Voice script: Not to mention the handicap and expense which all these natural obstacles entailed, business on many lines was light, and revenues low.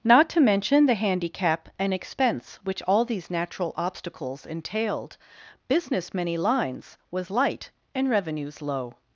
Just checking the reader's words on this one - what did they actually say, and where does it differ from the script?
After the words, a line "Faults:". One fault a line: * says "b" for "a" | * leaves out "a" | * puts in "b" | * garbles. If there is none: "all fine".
Not to mention the handicap and expense which all these natural obstacles entailed, business many lines was light, and revenues low.
Faults:
* leaves out "on"